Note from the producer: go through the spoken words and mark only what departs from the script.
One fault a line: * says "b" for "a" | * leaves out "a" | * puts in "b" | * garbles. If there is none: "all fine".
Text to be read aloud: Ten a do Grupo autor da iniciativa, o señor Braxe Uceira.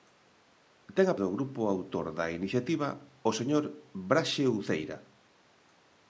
all fine